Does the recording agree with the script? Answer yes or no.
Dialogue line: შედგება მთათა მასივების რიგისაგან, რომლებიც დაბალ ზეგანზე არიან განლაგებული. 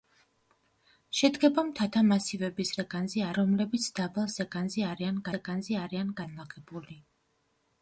no